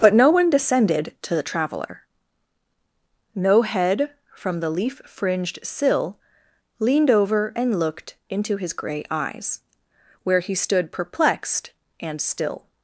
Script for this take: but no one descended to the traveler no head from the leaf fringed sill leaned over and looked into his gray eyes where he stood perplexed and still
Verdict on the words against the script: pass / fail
pass